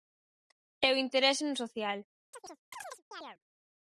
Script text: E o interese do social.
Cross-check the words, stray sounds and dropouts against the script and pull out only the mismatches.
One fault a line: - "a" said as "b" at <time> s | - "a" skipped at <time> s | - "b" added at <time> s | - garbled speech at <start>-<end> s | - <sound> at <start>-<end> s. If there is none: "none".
- "do" said as "no" at 1.4 s
- chirp at 2.3-3.4 s